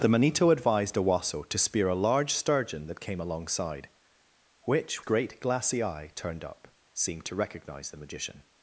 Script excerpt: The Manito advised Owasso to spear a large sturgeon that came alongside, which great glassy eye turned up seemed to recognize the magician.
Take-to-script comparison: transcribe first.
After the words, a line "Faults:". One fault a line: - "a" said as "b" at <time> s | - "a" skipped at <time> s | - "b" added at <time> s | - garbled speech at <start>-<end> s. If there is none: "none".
The Manito advised Owasso to spear a large sturgeon that came alongside, which great glassy eye turned up seemed to recognize the magician.
Faults:
none